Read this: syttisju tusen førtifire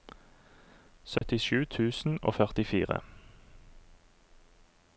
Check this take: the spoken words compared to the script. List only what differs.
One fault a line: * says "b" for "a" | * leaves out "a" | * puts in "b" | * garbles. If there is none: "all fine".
* puts in "og"